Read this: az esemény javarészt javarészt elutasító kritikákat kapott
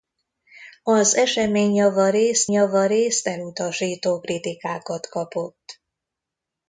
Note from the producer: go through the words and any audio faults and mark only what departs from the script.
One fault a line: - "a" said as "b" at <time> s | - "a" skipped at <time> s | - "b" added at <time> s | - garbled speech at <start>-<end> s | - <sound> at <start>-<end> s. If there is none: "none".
none